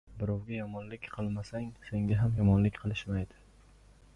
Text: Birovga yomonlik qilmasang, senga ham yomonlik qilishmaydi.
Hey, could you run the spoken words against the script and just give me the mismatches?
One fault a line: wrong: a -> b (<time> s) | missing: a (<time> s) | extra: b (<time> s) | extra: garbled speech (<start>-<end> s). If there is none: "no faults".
no faults